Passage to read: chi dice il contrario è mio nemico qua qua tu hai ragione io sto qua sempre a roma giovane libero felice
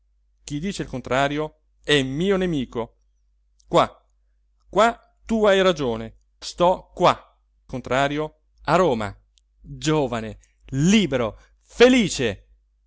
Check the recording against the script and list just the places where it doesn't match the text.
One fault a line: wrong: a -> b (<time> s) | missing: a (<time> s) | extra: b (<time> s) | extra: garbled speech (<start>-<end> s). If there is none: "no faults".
missing: io (6.2 s)
wrong: sempre -> contrario (7.7 s)